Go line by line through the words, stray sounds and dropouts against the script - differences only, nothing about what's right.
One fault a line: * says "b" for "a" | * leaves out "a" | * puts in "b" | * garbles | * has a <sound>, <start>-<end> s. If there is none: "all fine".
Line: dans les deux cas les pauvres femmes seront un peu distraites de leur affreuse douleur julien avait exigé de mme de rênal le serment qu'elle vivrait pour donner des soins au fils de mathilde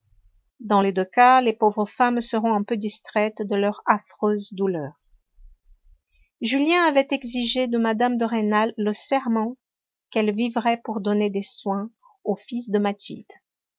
all fine